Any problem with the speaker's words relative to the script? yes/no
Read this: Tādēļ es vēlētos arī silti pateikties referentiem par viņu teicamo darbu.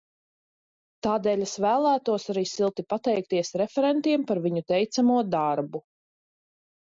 no